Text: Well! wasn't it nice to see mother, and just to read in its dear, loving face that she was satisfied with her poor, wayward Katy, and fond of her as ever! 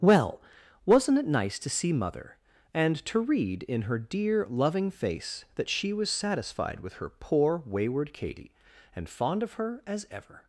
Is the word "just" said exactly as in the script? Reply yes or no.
no